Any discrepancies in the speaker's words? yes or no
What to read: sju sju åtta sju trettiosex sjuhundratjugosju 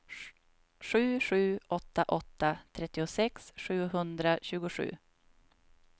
yes